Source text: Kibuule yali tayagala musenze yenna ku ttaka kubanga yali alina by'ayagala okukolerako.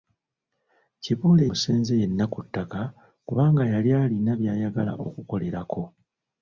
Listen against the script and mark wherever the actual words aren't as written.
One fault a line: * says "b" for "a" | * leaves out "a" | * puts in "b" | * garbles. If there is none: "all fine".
* leaves out "yali tayagala"